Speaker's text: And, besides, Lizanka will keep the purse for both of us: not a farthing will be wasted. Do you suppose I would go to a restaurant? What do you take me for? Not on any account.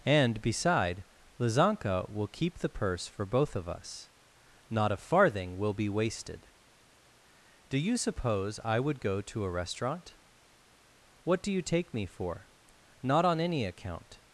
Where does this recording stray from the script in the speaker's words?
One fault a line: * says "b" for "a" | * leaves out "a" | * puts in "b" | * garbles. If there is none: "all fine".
* says "beside" for "besides"